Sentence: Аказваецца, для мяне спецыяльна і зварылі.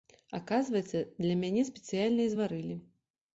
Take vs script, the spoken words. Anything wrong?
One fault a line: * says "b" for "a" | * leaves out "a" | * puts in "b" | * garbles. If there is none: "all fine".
all fine